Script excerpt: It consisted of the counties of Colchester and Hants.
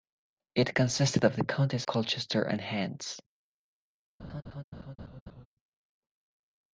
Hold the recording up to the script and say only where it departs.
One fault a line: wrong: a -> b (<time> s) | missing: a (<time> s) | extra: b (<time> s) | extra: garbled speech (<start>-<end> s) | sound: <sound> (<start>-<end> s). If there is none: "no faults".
missing: of (1.9 s)
sound: laugh (4.2-5.5 s)